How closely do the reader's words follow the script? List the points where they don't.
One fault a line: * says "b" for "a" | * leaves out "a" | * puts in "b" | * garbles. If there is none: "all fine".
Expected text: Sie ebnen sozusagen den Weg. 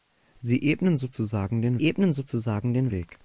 * puts in "ebnen sozusagen den"